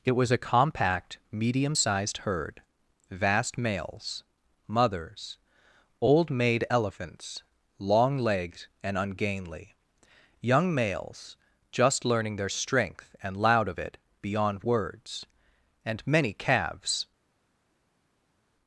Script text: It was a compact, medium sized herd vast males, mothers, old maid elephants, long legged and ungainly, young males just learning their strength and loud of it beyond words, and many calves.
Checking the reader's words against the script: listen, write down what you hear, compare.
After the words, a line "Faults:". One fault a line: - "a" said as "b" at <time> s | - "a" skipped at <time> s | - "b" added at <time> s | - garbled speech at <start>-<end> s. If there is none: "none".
It was a compact, medium sized herd vast males, mothers, old maid elephants, long legged and ungainly, young males just learning their strength and loud of it beyond words, and many calves.
Faults:
none